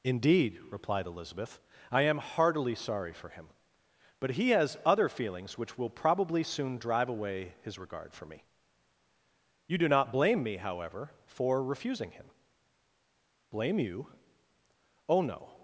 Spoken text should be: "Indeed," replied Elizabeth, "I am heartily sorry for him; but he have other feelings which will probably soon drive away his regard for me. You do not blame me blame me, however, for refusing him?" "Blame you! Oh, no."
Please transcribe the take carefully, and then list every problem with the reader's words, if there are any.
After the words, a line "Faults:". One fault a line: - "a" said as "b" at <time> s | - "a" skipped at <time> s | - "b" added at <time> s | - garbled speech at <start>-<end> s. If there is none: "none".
"Indeed," replied Elizabeth, "I am heartily sorry for him; but he has other feelings which will probably soon drive away his regard for me. You do not blame me, however, for refusing him?" "Blame you! Oh, no."
Faults:
- "have" said as "has" at 4.5 s
- "blame me" skipped at 10.6 s